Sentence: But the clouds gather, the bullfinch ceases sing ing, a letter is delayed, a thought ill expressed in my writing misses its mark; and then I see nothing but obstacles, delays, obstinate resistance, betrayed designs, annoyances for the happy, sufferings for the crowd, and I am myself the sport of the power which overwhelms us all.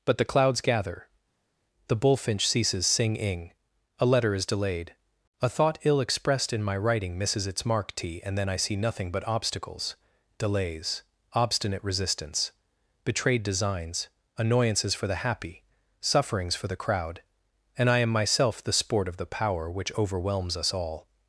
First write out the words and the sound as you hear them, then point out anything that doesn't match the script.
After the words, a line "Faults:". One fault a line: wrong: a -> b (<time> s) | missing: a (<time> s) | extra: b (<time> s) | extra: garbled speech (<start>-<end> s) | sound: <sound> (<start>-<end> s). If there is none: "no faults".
But the clouds gather, the bullfinch ceases sing ing, a letter is delayed, a thought ill expressed in my writing misses its mark; t and then I see nothing but obstacles, delays, obstinate resistance, betrayed designs, annoyances for the happy, sufferings for the crowd, and I am myself the sport of the power which overwhelms us all.
Faults:
extra: t (7.9 s)